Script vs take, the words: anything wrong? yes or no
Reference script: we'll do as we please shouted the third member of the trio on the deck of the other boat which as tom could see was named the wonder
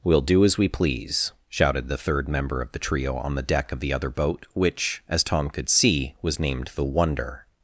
no